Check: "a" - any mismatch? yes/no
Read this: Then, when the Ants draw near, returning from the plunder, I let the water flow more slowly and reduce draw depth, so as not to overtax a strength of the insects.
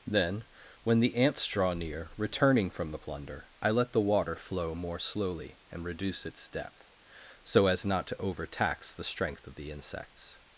yes